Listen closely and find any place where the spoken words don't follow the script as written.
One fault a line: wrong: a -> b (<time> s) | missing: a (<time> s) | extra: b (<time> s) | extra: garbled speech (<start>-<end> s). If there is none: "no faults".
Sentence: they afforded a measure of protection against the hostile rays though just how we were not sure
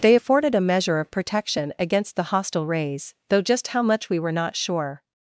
extra: much (3.8 s)